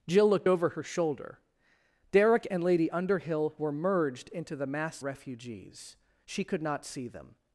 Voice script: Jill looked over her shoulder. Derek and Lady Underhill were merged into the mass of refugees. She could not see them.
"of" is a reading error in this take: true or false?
true